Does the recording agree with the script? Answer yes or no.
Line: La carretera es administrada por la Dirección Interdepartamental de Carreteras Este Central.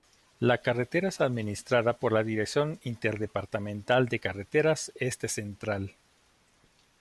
yes